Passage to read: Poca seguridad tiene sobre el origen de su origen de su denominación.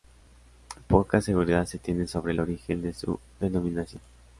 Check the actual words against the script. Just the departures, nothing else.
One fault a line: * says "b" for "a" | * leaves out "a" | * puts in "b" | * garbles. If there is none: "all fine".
* puts in "se"
* leaves out "origen de su"